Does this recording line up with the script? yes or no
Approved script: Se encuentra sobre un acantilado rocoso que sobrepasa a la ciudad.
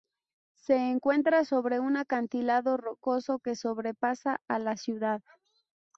yes